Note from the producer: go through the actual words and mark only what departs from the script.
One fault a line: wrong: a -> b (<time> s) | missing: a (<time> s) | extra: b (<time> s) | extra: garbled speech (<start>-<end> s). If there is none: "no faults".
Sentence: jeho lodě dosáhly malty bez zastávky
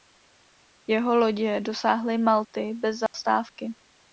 no faults